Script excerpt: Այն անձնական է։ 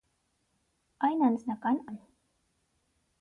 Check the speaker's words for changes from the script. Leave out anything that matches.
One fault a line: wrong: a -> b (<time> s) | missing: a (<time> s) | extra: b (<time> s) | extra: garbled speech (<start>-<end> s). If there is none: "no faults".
no faults